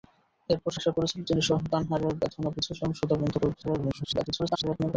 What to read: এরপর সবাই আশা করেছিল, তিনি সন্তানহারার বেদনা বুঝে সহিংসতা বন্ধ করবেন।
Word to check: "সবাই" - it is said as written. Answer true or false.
false